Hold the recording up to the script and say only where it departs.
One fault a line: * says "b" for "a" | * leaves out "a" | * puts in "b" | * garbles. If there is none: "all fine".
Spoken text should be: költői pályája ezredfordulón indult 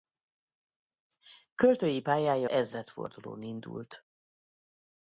all fine